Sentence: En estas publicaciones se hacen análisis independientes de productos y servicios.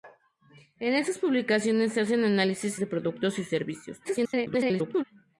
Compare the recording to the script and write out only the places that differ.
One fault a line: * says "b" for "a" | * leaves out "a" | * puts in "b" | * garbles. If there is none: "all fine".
* leaves out "independientes"
* garbles